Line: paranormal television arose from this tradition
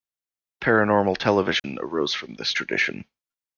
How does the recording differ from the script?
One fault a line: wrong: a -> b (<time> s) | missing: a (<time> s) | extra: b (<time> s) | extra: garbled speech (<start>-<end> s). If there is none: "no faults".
no faults